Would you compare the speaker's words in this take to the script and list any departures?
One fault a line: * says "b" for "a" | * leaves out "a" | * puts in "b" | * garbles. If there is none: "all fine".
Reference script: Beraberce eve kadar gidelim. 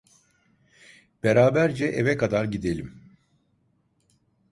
all fine